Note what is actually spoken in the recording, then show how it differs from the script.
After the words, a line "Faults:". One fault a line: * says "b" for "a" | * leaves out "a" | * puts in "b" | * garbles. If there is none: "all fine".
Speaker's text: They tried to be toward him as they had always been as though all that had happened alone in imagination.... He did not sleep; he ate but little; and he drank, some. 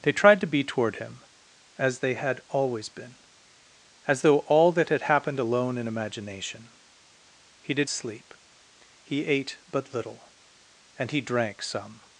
They tried to be toward him as they had always been as though all that had happened alone in imagination.... He did sleep; he ate but little; and he drank, some.
Faults:
* leaves out "not"